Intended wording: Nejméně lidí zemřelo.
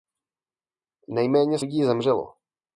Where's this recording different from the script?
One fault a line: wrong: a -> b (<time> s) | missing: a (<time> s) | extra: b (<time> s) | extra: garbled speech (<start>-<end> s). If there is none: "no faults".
no faults